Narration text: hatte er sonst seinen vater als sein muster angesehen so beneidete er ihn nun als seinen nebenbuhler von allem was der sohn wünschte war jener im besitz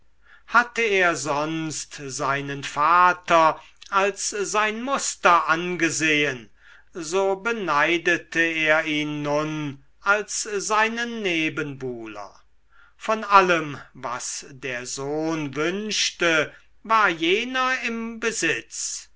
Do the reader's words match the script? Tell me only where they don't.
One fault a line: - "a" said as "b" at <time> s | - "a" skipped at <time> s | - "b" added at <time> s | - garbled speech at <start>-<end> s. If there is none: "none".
none